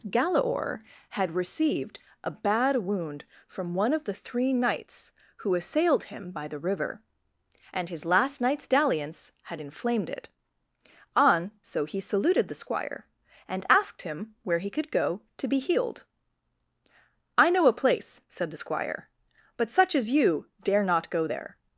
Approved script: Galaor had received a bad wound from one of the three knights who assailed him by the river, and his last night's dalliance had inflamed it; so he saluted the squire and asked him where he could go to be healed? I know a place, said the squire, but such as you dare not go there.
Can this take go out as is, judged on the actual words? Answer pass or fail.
fail